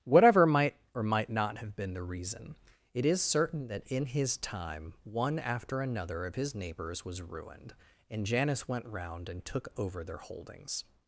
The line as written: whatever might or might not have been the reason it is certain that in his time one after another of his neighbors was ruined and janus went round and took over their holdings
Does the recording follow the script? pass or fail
pass